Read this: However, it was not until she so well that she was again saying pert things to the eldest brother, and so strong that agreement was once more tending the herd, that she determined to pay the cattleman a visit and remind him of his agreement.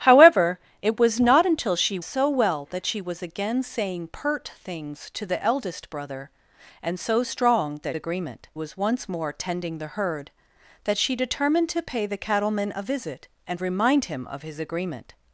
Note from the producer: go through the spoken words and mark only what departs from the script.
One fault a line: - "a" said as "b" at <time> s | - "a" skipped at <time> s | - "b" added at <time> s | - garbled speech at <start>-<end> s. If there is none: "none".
none